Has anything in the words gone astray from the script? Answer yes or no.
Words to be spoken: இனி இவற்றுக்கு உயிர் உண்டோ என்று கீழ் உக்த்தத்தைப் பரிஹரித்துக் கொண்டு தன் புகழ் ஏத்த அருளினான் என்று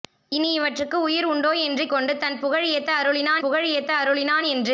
yes